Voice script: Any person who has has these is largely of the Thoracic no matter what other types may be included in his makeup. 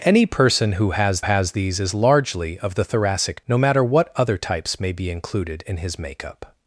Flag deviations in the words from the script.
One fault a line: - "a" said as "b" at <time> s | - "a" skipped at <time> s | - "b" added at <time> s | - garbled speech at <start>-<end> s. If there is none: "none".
none